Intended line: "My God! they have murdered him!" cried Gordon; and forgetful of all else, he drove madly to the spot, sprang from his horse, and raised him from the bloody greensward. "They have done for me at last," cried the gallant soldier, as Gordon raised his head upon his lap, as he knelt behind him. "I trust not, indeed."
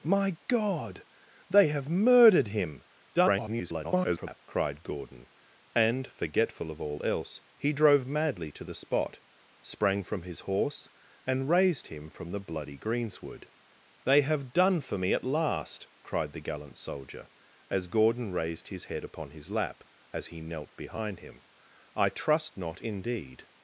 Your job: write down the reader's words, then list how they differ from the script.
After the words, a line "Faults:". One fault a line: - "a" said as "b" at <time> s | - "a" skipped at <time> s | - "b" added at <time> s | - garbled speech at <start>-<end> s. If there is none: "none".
"My God! they have murdered him!" [garbled] cried Gordon; and forgetful of all else, he drove madly to the spot, sprang from his horse, and raised him from the bloody greensward. "They have done for me at last," cried the gallant soldier, as Gordon raised his head upon his lap, as he knelt behind him. "I trust not, indeed."
Faults:
- garbled speech at 3.1-4.4 s